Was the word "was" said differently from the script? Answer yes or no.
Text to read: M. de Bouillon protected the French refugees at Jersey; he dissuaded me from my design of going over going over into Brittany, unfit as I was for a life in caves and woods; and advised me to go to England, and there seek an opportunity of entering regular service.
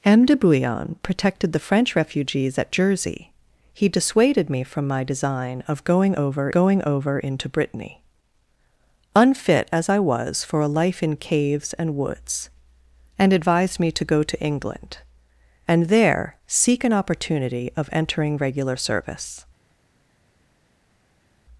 no